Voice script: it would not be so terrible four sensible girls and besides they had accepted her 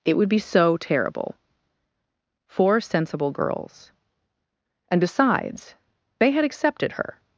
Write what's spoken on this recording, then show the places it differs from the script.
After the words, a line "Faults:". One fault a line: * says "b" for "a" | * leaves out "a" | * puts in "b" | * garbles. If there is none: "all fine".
it would be so terrible four sensible girls and besides they had accepted her
Faults:
* leaves out "not"